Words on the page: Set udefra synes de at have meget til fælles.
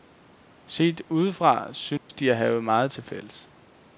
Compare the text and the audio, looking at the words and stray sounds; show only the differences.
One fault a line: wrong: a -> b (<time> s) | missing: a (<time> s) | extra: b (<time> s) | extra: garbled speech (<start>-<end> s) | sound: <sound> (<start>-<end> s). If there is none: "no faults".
sound: dropout (2.0-2.1 s)